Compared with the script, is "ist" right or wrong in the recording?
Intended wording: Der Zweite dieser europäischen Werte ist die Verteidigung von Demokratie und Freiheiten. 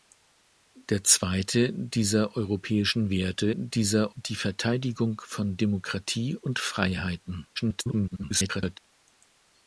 wrong